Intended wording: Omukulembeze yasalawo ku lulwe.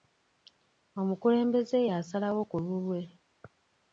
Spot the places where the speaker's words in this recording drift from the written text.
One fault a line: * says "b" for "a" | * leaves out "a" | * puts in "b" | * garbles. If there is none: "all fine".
all fine